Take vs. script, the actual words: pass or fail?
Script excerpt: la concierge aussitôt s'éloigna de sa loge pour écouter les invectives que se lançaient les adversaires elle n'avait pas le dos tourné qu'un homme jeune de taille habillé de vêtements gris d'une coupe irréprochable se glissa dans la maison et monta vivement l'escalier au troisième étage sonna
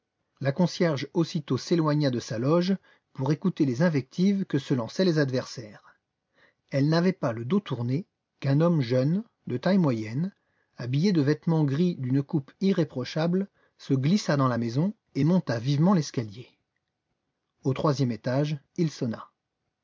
fail